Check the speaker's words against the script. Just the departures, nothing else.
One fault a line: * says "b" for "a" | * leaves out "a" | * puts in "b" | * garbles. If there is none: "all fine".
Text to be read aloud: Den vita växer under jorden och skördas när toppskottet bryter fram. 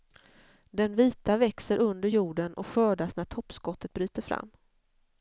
all fine